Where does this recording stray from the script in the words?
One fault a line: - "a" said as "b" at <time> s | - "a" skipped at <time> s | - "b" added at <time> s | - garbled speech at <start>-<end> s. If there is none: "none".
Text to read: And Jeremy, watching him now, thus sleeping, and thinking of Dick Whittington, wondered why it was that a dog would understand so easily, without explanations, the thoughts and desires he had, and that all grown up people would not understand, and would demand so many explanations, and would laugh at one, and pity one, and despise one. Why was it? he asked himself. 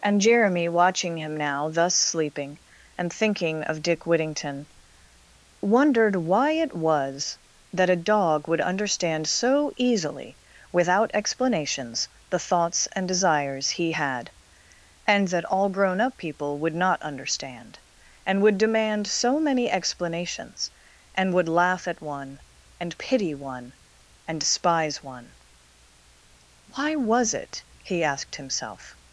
none